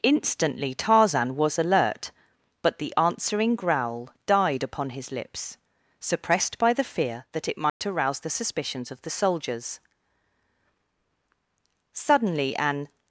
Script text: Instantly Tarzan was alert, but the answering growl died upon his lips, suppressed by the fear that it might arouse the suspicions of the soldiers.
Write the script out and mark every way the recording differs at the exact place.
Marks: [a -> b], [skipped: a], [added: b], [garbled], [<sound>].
Instantly Tarzan was alert, but the answering growl died upon his lips, suppressed by the fear that it might [dropout] arouse the suspicions of the soldiers. [added: Suddenly an]